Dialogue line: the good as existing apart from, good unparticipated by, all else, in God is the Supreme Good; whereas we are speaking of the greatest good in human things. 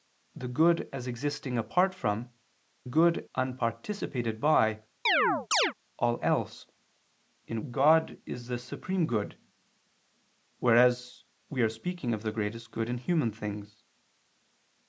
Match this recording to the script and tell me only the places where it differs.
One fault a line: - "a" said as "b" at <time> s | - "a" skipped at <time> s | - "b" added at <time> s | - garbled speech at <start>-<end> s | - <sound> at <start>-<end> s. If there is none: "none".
- chirp at 5.1-5.7 s